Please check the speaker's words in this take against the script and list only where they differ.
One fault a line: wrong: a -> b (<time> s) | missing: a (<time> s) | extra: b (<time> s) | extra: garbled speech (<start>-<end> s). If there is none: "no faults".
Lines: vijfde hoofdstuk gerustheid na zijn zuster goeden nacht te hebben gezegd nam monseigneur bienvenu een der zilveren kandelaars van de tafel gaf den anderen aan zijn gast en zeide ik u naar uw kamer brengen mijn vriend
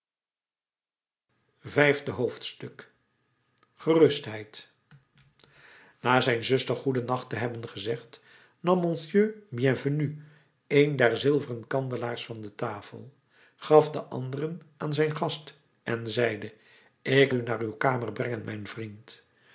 no faults